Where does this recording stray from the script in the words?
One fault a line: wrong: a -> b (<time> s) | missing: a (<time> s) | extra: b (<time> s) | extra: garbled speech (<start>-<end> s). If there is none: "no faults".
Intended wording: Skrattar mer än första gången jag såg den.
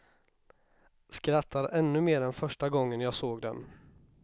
extra: ännu (1.7 s)